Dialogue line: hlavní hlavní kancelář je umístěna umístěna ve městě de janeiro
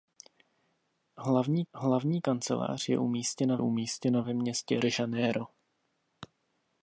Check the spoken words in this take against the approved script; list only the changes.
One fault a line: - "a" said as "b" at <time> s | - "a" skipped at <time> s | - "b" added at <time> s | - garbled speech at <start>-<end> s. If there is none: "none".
none